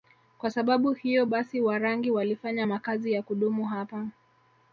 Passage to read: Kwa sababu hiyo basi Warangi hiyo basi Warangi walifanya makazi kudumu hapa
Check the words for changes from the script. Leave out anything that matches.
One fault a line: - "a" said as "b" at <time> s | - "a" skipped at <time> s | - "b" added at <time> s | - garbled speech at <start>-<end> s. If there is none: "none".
- "hiyo basi Warangi" skipped at 2.1 s
- "ya" added at 3.1 s